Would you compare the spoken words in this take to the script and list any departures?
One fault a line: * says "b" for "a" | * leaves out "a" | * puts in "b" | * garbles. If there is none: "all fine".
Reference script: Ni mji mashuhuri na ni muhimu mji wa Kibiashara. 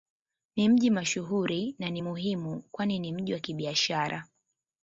* puts in "kwani ni"